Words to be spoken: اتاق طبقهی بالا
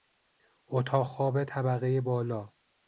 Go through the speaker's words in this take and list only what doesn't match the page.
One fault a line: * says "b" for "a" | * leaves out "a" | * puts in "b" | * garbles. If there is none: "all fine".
* puts in "خواب"